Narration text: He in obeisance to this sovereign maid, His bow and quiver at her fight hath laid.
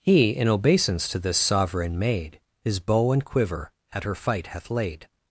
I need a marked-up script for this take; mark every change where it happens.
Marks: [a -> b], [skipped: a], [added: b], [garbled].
He in obeisance to this sovereign maid, His bow and quiver at her fight hath laid.